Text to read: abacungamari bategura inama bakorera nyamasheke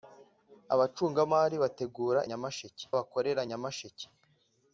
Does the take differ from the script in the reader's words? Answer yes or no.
yes